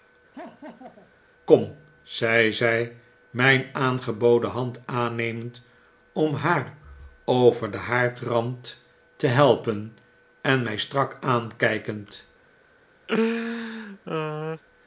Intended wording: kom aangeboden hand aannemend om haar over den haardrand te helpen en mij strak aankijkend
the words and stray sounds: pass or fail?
fail